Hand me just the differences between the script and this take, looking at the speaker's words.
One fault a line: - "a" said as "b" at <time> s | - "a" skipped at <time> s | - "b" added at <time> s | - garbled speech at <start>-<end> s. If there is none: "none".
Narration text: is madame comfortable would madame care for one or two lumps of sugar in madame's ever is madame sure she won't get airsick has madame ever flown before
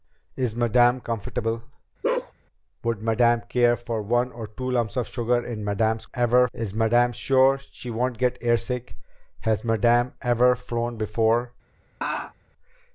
none